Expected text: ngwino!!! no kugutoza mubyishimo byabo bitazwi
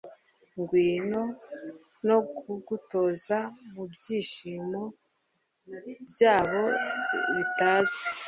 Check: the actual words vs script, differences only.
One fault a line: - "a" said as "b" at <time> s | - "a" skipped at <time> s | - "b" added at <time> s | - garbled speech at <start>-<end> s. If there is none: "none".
none